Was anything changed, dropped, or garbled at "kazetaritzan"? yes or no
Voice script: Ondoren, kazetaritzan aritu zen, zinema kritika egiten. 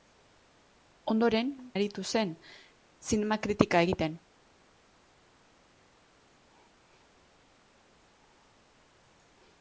yes